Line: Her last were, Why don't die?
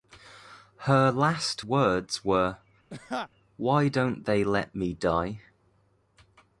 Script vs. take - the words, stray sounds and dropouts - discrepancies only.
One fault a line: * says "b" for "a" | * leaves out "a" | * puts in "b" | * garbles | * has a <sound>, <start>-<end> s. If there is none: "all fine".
* puts in "words"
* has a laugh, 2.9-3.3 s
* puts in "they let me"